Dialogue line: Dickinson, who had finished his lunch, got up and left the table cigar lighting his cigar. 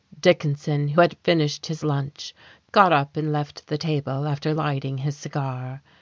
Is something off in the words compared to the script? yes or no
yes